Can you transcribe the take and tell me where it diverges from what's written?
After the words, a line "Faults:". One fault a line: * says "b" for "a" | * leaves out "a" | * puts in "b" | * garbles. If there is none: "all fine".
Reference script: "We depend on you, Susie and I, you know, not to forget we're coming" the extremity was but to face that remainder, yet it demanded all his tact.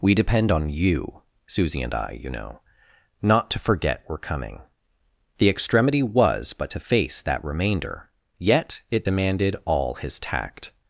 "We depend on you, Susie and I, you know, not to forget we're coming" the extremity was but to face that remainder, yet it demanded all his tact.
Faults:
all fine